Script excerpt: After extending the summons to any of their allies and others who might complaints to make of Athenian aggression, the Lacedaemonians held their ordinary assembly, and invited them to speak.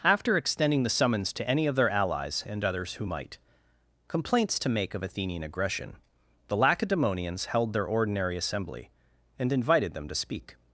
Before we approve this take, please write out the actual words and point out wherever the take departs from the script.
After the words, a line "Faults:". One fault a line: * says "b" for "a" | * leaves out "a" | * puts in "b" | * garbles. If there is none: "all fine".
After extending the summons to any of their allies and others who might complaints to make of Athenian aggression, the Lacedaemonians held their ordinary assembly, and invited them to speak.
Faults:
all fine